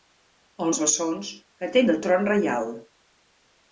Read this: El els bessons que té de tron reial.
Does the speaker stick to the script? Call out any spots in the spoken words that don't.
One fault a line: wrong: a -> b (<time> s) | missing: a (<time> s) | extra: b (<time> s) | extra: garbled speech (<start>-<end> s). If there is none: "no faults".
no faults